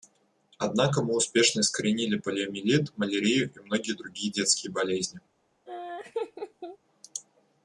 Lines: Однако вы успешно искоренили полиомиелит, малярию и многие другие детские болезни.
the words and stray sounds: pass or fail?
fail